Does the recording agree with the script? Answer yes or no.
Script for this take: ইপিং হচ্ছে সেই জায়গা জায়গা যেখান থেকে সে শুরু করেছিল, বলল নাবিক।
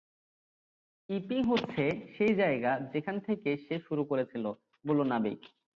no